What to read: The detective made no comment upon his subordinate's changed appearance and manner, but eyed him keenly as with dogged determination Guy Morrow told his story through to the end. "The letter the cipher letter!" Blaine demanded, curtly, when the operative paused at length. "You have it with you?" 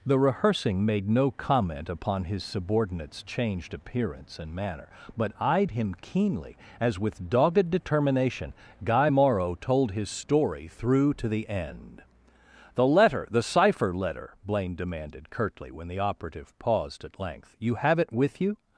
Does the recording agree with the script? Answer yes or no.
no